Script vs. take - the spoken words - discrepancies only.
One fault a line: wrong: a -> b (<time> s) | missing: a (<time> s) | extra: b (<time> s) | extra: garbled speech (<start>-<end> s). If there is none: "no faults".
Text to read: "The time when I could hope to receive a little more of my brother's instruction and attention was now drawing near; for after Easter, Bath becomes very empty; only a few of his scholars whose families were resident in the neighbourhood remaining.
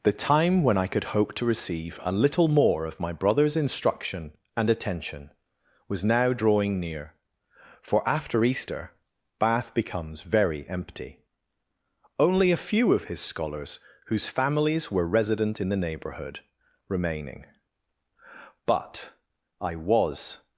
extra: But I was (18.7 s)